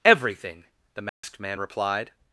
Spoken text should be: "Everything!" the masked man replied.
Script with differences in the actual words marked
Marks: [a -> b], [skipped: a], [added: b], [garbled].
"Everything!" the masked man replied.